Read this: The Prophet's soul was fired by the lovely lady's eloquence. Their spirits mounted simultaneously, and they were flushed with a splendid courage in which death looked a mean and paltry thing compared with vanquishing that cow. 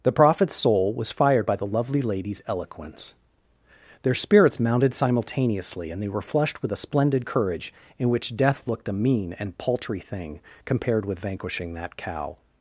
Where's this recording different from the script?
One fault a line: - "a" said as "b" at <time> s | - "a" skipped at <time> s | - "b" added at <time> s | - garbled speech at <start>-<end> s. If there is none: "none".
none